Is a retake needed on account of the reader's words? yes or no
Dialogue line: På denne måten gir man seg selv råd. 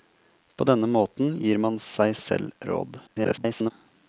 yes